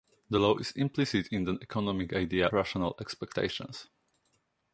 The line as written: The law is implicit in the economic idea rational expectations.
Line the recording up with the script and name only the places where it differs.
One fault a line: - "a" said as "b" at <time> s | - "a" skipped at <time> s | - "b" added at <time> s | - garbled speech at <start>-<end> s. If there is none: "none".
none